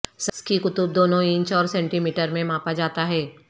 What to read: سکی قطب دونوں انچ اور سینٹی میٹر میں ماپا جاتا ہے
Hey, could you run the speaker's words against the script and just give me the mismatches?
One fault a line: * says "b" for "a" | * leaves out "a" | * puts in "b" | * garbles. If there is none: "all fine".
all fine